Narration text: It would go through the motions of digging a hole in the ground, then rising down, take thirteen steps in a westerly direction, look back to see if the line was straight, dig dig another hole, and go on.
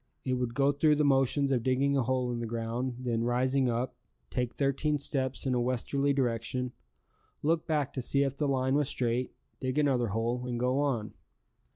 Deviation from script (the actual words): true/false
true